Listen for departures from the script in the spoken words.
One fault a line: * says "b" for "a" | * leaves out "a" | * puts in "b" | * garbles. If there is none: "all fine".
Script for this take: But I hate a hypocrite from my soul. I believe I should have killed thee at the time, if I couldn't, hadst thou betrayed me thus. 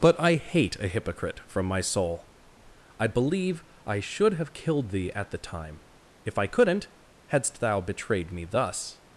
all fine